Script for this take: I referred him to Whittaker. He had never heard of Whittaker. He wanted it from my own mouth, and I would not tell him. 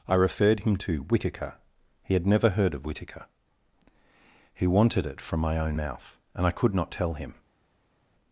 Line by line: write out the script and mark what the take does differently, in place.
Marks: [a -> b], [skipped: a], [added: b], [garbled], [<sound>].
I referred him to Whittaker. He had never heard of Whittaker. He wanted it from my own mouth, and I [would -> could] not tell him.